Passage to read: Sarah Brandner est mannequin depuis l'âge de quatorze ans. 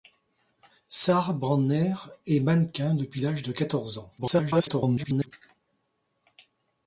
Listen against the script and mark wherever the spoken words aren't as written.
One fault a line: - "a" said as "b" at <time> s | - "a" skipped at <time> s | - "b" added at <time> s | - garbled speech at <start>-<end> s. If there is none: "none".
- garbled speech at 4.2-5.3 s